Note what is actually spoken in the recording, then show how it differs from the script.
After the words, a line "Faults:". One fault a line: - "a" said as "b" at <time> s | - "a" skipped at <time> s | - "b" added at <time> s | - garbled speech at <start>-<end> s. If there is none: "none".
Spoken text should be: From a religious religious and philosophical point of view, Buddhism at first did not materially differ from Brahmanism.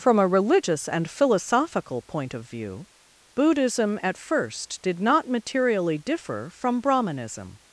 From a religious and philosophical point of view, Buddhism at first did not materially differ from Brahmanism.
Faults:
- "religious" skipped at 0.9 s